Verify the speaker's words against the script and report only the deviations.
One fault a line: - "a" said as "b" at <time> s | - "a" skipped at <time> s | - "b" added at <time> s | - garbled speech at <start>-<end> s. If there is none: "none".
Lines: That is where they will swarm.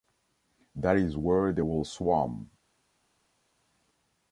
none